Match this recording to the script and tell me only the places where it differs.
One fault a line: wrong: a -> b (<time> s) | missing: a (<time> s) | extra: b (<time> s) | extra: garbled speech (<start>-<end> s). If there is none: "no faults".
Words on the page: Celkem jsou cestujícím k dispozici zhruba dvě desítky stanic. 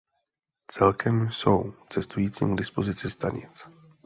missing: zhruba dvě desítky (3.1 s)